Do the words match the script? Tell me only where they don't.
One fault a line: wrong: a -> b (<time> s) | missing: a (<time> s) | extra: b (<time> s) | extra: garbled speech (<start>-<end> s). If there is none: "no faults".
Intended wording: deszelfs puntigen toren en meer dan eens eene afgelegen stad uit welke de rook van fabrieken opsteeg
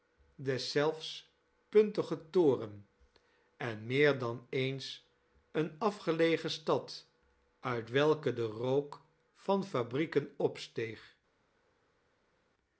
no faults